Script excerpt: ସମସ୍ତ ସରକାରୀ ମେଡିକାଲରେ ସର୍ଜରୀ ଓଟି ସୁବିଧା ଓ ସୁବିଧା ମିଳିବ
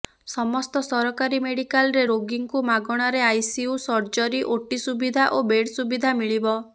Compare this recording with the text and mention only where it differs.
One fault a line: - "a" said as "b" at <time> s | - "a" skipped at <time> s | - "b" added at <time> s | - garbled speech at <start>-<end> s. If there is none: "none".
- "ରୋଗୀଙ୍କୁ ମାଗଣାରେ ଆଇସିୟୁ" added at 2.0 s
- "ବେଡ୍" added at 5.5 s